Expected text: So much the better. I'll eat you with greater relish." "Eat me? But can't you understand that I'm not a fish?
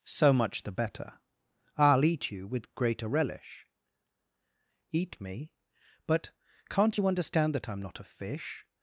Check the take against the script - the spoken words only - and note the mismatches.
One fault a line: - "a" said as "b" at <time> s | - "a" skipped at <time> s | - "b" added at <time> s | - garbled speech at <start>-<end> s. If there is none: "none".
none